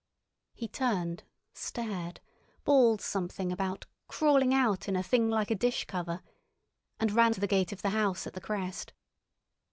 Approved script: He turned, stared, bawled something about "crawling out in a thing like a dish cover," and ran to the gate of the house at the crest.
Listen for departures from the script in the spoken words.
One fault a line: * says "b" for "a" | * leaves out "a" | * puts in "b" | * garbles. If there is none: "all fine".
all fine